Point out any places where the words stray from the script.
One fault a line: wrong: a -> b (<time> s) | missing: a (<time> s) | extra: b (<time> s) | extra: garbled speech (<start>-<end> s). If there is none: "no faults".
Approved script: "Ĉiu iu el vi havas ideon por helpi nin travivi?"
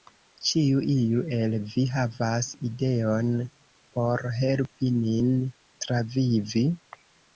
no faults